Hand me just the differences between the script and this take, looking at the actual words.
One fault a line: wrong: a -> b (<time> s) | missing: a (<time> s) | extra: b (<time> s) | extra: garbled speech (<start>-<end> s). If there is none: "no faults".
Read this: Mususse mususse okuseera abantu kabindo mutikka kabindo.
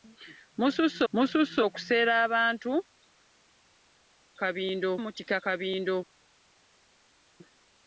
no faults